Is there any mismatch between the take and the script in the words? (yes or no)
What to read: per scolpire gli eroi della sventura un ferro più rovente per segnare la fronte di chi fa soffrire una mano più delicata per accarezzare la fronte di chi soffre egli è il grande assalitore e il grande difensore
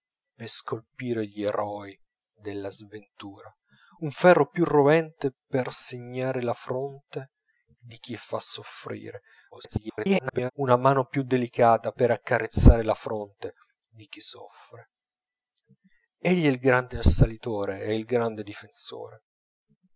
yes